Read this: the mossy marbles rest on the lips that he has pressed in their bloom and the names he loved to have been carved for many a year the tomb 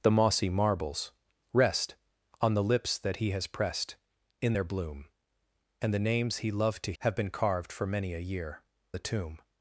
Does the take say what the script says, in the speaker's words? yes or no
yes